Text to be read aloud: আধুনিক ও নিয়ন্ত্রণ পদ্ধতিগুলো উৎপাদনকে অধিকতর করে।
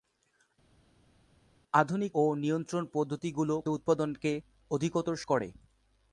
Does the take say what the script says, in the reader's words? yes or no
yes